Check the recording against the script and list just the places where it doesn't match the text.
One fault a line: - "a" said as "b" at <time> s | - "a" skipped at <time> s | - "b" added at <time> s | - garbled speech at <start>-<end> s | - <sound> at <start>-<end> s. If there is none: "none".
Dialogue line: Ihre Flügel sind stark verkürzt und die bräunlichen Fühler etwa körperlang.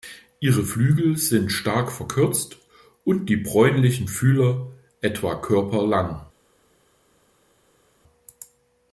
none